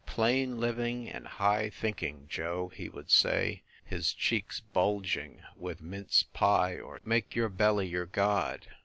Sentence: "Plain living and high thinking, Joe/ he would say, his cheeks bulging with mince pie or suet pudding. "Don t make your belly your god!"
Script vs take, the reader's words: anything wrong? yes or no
yes